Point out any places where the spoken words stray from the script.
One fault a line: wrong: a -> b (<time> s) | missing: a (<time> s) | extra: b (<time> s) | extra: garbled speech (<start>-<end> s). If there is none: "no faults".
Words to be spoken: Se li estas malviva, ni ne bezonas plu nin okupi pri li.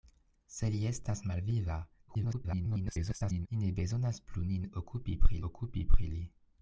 extra: garbled speech (2.1-3.5 s)
extra: okupi pri (5.5 s)